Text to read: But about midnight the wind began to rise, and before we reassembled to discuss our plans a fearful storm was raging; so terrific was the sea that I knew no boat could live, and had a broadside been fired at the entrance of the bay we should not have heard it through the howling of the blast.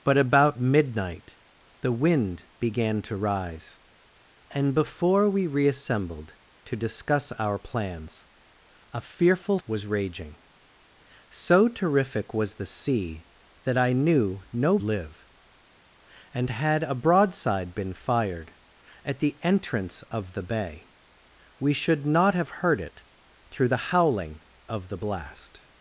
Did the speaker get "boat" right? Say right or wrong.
wrong